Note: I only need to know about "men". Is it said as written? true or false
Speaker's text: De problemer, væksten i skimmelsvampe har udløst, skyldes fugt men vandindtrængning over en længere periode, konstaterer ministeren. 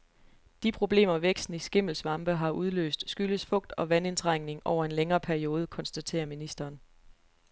false